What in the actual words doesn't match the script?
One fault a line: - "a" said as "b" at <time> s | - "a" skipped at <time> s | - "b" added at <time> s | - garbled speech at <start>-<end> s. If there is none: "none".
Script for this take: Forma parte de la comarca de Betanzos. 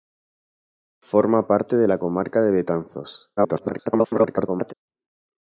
- garbled speech at 3.4-4.7 s